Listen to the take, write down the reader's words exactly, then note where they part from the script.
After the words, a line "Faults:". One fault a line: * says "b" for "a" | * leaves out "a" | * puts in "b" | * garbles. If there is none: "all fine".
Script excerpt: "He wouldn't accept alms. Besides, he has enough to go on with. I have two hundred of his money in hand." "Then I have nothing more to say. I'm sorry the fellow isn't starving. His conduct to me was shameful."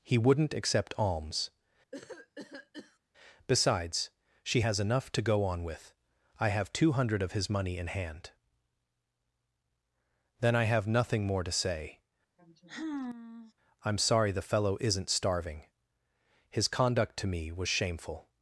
"He wouldn't accept alms. Besides, she has enough to go on with. I have two hundred of his money in hand." "Then I have nothing more to say. I'm sorry the fellow isn't starving. His conduct to me was shameful."
Faults:
* says "she" for "he"